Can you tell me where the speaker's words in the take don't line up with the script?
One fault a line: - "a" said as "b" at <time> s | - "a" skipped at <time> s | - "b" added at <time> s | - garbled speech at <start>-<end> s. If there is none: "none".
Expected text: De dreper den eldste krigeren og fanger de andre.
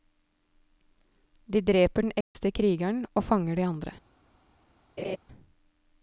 none